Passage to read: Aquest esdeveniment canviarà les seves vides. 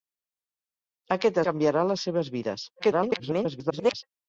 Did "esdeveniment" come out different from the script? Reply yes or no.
yes